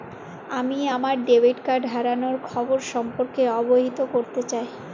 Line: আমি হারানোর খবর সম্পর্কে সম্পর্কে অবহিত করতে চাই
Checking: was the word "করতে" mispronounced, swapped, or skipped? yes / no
no